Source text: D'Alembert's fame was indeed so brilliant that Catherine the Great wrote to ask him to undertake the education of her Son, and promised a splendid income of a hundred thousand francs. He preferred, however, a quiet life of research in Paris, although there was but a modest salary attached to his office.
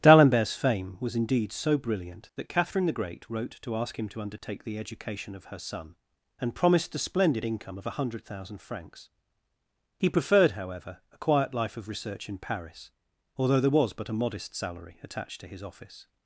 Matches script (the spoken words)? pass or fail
pass